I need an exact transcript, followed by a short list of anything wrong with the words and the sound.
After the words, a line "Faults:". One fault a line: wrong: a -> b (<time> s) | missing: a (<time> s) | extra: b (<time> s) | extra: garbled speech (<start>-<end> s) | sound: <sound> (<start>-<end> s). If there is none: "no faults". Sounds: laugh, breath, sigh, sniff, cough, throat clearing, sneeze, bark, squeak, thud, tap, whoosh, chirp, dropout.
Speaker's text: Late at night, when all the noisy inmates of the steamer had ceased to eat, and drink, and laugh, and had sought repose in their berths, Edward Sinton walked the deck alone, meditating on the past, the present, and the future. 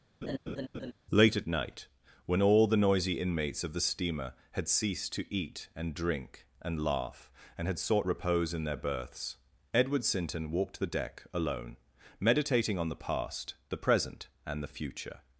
Late at night, when all the noisy inmates of the steamer had ceased to eat, and drink, and laugh, and had sought repose in their berths, Edward Sinton walked the deck alone, meditating on the past, the present, and the future.
Faults:
sound: laugh (0.2-0.9 s)